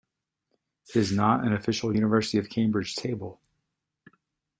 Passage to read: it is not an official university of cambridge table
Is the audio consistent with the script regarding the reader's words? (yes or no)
yes